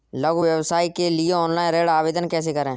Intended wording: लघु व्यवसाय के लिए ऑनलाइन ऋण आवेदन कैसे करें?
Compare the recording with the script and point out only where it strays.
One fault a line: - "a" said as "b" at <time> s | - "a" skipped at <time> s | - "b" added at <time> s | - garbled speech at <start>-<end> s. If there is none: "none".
none